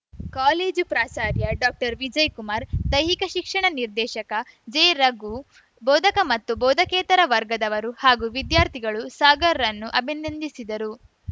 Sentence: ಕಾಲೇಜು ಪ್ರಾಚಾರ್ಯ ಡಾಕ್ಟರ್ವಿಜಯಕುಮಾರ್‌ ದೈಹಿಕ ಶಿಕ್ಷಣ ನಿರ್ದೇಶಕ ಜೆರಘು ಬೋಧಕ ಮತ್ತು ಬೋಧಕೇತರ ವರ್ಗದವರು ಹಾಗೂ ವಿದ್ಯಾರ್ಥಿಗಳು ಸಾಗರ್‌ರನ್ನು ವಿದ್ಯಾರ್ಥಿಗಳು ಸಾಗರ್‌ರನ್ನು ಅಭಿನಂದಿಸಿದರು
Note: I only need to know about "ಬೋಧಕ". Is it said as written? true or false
true